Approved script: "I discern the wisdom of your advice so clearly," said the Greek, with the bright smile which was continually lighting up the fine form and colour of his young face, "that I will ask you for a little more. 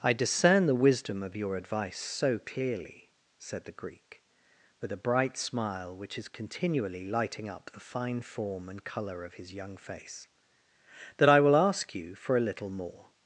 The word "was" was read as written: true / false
false